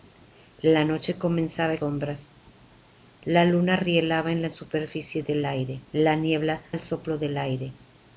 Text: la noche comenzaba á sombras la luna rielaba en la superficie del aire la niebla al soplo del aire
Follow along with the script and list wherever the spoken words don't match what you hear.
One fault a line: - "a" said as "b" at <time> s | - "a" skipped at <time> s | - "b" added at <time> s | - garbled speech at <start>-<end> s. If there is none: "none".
none